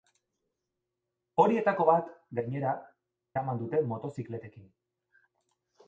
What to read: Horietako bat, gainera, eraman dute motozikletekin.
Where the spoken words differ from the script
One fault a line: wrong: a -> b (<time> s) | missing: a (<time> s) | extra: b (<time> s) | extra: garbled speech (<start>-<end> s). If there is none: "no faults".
no faults